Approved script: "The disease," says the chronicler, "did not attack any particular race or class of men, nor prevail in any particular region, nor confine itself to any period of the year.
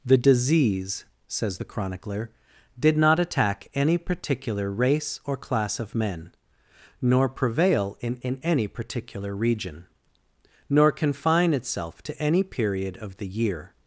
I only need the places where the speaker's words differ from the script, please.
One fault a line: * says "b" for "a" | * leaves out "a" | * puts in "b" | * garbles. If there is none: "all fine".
* puts in "in"